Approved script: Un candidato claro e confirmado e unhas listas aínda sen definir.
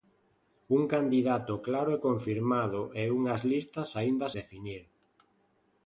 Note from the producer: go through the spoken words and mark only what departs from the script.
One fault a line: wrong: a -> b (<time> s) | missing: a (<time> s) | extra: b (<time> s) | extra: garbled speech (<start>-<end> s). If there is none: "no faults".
missing: sen (4.3 s)